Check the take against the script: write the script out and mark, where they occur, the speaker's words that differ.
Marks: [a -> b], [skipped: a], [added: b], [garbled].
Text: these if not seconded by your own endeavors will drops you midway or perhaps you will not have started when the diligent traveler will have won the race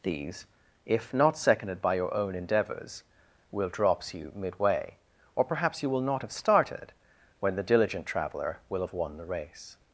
these if not seconded by your own endeavors will drops you midway or perhaps you will not have started when the diligent traveler will have won the race